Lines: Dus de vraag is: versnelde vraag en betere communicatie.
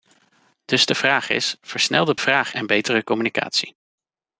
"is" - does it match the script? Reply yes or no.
yes